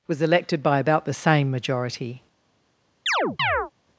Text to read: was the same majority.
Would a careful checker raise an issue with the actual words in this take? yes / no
yes